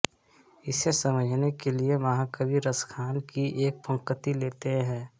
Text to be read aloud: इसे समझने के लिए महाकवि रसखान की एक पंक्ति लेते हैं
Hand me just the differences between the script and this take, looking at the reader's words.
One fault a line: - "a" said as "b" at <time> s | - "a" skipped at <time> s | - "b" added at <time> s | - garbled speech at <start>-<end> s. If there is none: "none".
none